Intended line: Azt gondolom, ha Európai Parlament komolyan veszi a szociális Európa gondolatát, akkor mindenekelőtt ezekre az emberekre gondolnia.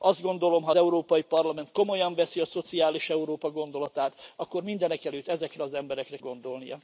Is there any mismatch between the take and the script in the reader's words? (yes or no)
no